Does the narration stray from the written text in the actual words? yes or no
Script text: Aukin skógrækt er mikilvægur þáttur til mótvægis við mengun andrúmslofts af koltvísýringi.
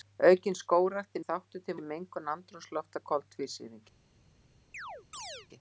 yes